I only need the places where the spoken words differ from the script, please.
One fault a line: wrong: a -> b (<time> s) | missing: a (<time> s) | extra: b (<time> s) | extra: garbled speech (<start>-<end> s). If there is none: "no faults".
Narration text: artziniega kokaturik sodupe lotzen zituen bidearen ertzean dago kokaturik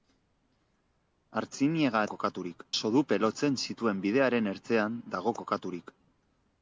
no faults